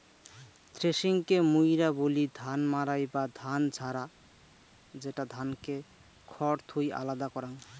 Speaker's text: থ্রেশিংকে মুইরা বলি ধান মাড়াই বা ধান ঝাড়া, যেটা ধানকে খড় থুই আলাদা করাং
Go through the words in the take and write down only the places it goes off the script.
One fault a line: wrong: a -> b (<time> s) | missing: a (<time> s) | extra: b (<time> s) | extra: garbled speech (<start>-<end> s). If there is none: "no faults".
no faults